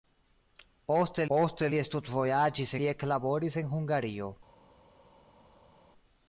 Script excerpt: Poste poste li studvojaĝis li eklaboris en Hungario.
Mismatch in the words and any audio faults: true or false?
false